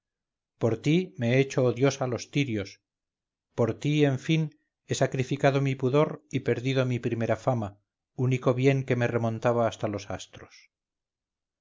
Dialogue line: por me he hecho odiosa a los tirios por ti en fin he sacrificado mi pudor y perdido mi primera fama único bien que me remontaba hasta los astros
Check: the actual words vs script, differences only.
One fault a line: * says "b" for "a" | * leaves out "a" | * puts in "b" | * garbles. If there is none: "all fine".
* puts in "ti"